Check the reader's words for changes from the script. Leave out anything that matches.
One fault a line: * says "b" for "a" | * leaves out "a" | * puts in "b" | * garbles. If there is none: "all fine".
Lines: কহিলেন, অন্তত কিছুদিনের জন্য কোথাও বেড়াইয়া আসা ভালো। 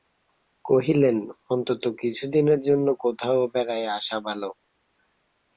all fine